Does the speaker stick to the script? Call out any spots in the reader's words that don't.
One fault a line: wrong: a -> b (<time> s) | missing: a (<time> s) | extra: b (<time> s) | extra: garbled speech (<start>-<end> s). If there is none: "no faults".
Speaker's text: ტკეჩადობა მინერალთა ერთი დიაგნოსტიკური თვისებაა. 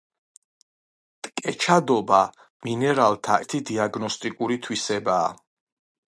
no faults